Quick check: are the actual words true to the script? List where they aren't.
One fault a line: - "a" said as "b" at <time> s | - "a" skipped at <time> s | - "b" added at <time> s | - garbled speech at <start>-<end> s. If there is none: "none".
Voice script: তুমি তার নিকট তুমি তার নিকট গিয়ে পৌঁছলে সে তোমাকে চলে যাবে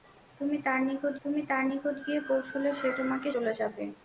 none